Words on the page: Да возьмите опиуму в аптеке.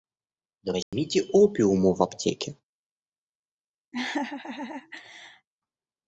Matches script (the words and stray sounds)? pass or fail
fail